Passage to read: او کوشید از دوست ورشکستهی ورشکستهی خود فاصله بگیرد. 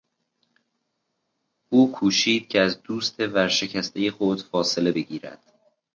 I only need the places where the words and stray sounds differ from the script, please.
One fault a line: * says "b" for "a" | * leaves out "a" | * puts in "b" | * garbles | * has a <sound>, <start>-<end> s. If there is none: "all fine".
* puts in "که"
* leaves out "ورشکستهی"